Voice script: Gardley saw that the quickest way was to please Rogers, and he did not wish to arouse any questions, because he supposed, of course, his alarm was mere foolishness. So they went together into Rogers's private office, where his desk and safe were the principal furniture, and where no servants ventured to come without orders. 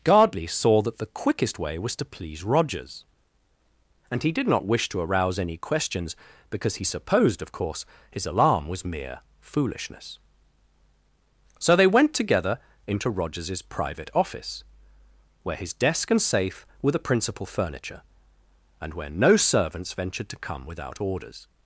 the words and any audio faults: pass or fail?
pass